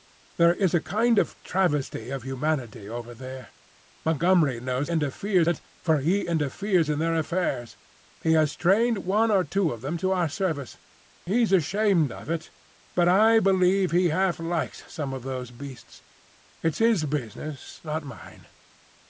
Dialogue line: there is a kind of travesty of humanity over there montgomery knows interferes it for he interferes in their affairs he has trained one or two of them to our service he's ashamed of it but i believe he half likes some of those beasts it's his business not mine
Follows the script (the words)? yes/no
yes